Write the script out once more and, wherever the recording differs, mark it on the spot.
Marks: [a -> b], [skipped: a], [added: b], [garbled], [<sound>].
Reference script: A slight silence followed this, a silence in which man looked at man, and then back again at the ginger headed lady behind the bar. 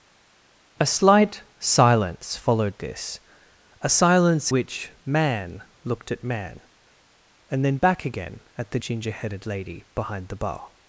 A slight silence followed this, a silence [skipped: in] which man looked at man, and then back again at the ginger headed lady behind the bar.